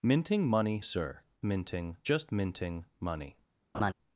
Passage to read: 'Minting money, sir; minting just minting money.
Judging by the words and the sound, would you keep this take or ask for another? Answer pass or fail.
fail